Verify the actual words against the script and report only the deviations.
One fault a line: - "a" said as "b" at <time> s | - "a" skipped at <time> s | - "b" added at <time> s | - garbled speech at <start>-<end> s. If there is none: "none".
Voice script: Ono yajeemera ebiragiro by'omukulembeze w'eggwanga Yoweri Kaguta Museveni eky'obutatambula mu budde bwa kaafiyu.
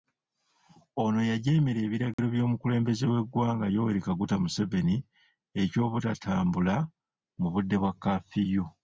none